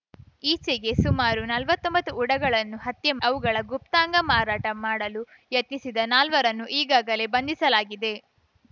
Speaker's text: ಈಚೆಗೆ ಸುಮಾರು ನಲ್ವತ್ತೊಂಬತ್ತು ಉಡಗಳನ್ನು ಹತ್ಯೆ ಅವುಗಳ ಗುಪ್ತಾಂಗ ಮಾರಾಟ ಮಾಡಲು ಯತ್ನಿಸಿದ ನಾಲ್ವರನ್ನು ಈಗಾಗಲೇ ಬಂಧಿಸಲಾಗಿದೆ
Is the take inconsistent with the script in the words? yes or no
no